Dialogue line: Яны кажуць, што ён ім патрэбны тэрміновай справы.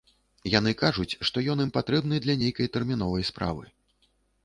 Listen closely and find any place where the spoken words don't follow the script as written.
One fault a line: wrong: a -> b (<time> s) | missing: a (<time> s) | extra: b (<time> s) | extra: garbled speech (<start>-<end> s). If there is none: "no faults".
extra: для нейкай (2.3 s)